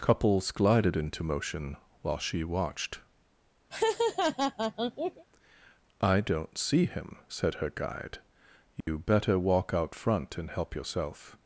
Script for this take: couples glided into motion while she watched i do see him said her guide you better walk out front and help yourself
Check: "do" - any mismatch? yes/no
yes